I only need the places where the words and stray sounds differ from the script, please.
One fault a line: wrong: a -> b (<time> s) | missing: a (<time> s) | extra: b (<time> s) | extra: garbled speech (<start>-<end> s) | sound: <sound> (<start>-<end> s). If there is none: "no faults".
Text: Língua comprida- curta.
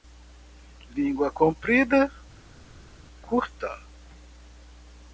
no faults